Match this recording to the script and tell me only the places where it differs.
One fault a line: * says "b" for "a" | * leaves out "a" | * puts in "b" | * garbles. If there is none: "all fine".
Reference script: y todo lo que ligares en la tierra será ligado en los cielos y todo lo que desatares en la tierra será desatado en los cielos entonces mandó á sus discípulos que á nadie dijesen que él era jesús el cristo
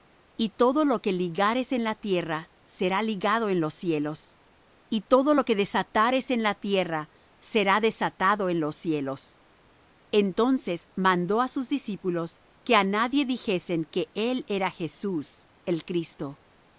all fine